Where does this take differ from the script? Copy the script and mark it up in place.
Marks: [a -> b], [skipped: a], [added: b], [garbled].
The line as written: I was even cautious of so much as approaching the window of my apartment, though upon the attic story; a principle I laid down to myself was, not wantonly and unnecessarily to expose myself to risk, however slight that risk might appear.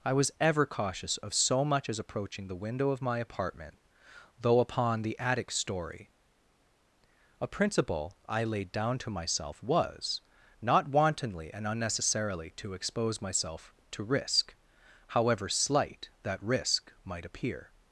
I was [even -> ever] cautious of so much as approaching the window of my apartment, though upon the attic story; a principle I laid down to myself was, not wantonly and unnecessarily to expose myself to risk, however slight that risk might appear.